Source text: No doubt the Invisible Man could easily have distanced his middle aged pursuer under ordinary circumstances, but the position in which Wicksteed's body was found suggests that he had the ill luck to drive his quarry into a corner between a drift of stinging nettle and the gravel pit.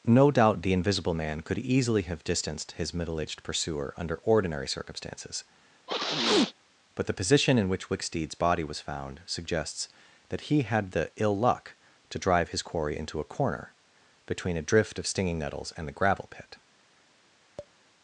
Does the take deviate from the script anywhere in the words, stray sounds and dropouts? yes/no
yes